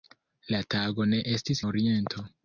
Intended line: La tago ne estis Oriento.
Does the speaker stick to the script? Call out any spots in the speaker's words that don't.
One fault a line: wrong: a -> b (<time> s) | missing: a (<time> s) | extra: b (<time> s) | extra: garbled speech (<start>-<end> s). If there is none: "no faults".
no faults